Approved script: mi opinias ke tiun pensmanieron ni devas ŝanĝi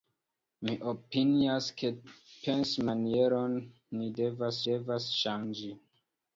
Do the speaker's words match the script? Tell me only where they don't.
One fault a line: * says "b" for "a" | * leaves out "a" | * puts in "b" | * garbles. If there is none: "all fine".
* leaves out "tiun"
* puts in "devas"